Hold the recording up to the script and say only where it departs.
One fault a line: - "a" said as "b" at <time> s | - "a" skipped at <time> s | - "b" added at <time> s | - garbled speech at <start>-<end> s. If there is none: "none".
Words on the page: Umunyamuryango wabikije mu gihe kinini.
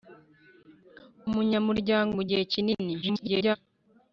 - "wabikije" skipped at 2.1 s
- garbled speech at 3.0-3.6 s